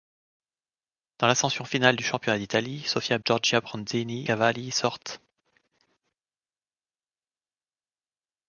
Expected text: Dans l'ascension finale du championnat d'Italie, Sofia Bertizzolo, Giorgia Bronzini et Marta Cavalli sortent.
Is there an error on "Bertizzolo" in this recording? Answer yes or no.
yes